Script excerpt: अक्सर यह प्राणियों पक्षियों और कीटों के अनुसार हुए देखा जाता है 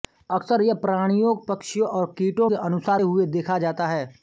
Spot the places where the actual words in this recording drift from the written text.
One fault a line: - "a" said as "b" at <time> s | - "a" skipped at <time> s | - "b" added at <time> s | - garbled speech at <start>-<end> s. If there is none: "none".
none